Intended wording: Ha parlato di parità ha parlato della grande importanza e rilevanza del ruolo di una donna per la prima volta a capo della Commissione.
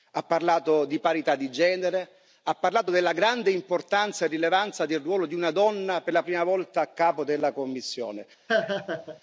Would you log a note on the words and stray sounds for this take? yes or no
yes